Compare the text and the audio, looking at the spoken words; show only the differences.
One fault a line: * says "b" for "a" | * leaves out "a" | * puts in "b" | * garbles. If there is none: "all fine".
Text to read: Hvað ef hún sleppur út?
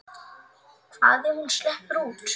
all fine